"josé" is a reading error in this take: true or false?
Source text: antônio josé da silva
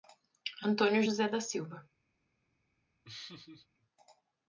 false